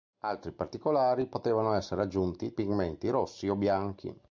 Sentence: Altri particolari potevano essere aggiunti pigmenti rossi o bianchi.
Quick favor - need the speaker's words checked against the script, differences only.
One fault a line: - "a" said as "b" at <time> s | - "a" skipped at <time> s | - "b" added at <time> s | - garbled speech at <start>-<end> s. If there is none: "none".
none